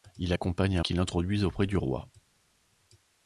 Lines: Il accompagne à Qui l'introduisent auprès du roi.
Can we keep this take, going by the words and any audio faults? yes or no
yes